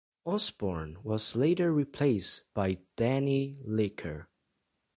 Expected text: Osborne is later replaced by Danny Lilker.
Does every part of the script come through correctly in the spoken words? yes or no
no